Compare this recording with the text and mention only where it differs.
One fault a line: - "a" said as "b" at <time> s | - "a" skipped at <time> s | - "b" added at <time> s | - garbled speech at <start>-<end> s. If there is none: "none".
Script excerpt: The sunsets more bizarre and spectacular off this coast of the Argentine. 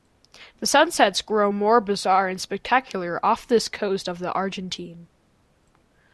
- "grow" added at 1.2 s